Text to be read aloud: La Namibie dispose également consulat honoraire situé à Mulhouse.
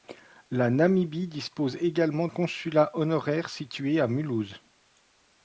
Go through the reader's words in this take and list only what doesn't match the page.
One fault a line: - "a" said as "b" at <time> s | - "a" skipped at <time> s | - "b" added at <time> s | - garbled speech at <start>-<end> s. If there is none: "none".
none